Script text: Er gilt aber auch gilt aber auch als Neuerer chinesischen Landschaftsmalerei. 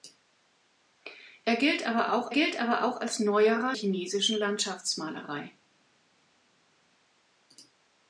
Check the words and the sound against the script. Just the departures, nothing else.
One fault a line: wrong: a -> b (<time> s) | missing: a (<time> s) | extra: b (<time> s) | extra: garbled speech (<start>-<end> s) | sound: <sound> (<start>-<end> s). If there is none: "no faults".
no faults